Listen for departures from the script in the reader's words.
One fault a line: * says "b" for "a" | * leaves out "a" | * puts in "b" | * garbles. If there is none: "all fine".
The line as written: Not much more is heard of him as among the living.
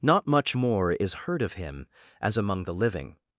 all fine